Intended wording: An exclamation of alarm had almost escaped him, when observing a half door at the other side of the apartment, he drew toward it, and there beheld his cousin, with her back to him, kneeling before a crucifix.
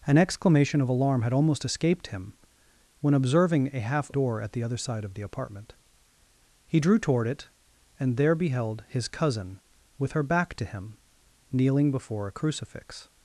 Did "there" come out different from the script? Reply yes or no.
no